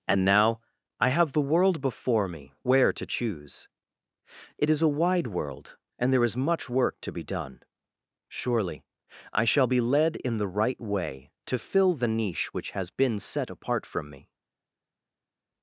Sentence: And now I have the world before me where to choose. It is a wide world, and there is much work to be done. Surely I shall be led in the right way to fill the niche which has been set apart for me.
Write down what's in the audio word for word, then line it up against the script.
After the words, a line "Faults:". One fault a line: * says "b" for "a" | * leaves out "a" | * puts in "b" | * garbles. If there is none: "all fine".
And now I have the world before me where to choose. It is a wide world, and there is much work to be done. Surely I shall be led in the right way to fill the niche which has been set apart from me.
Faults:
* says "from" for "for"